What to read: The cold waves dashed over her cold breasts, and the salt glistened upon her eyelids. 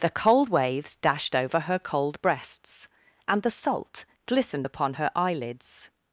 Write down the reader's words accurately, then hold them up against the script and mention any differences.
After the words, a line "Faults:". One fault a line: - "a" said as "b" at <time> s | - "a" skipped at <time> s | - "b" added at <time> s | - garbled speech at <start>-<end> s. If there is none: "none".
The cold waves dashed over her cold breasts, and the salt glistened upon her eyelids.
Faults:
none